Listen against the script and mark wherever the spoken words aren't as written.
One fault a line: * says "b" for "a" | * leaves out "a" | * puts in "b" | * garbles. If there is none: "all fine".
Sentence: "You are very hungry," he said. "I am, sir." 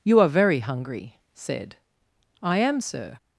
* leaves out "he"